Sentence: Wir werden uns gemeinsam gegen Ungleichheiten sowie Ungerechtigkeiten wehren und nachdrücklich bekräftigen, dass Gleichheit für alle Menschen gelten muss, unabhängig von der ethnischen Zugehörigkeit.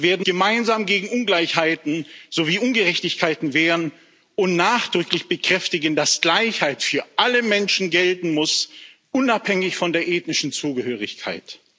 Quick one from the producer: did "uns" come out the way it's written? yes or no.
no